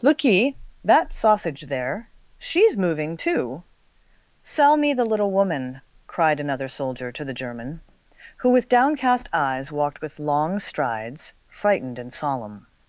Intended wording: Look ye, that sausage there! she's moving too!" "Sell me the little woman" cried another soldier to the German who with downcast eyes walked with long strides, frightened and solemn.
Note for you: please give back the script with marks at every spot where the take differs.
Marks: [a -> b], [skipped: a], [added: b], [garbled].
Look ye, that sausage there! she's moving too!" "Sell me the little woman" cried another soldier to the German who with downcast eyes walked with long strides, frightened and solemn.